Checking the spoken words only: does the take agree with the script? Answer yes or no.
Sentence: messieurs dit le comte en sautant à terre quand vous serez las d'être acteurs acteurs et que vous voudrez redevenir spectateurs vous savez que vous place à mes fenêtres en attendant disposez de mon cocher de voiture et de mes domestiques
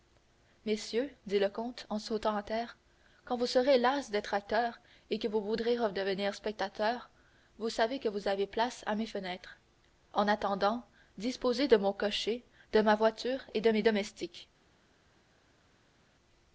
no